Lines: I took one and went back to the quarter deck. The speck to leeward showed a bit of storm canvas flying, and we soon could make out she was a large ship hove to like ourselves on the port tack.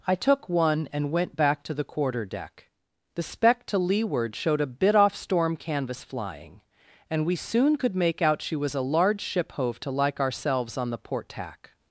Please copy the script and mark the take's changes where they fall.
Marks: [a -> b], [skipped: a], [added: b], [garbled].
I took one and went back to the quarter deck. The speck to leeward showed a bit [of -> off] storm canvas flying, and we soon could make out she was a large ship hove to like ourselves on the port tack.